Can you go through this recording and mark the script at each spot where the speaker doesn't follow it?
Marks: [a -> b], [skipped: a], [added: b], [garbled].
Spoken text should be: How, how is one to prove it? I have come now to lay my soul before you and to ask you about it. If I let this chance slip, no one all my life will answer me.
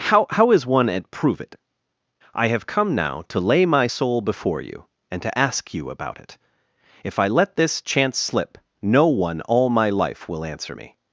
How, how is one [to -> at] prove it? I have come now to lay my soul before you and to ask you about it. If I let this chance slip, no one all my life will answer me.